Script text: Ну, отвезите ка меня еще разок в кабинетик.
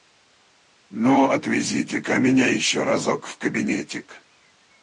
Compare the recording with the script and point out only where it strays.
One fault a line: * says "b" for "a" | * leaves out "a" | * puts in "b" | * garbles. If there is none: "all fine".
all fine